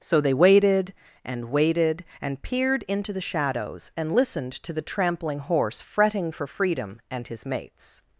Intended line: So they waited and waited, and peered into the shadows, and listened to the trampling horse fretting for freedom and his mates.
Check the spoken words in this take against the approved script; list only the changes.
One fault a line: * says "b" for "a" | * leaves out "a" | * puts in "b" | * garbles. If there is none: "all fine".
all fine